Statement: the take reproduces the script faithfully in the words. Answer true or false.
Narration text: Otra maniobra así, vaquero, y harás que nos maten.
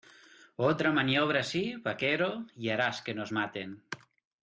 true